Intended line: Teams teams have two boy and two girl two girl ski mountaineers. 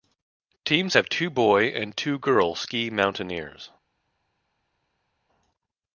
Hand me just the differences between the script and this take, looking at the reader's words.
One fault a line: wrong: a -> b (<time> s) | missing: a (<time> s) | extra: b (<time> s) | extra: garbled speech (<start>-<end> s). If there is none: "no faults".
missing: teams (0.9 s)
missing: two girl (2.5 s)